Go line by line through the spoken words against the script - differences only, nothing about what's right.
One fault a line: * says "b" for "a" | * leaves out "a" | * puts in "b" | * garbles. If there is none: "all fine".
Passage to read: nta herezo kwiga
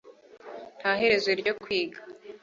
* puts in "ryo"